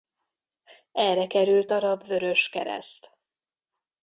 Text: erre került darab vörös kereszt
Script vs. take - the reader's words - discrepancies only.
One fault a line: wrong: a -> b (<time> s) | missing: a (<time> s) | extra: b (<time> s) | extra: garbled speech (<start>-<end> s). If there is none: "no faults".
no faults